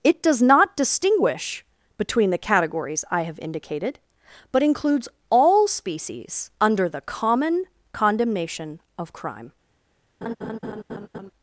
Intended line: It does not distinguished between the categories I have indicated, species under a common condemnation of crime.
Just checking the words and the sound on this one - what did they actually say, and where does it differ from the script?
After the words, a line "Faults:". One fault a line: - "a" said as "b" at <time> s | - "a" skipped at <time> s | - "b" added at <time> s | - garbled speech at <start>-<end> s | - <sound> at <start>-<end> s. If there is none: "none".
It does not distinguish between the categories I have indicated, but includes all species under the common condemnation of crime.
Faults:
- "distinguished" said as "distinguish" at 0.8 s
- "but includes all" added at 4.5 s
- "a" said as "the" at 6.9 s
- laugh at 10.2-11.3 s